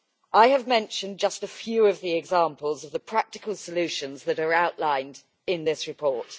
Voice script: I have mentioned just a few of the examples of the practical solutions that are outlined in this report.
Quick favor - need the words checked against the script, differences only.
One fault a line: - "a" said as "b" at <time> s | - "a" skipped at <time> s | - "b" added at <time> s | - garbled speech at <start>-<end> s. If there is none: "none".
none